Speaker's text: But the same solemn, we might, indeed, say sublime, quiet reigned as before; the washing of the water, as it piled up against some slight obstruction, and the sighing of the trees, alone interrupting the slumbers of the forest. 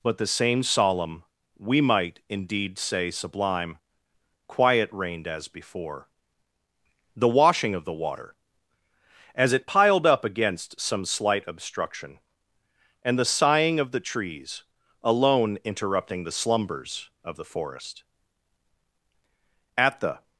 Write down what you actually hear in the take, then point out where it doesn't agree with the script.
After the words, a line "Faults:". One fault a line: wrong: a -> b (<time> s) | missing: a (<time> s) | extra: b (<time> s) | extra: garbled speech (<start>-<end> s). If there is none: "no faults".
But the same solemn, we might, indeed, say sublime, quiet reigned as before; the washing of the water, as it piled up against some slight obstruction, and the sighing of the trees, alone interrupting the slumbers of the forest. At the
Faults:
extra: At the (19.8 s)